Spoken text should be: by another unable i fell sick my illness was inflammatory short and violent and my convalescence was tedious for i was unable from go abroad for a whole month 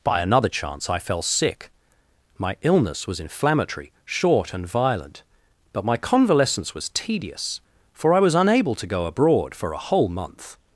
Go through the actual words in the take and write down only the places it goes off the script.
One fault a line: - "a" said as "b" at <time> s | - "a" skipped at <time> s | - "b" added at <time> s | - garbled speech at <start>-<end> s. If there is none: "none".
- "unable" said as "chance" at 0.5 s
- "and" said as "but" at 5.7 s
- "from" said as "to" at 8.8 s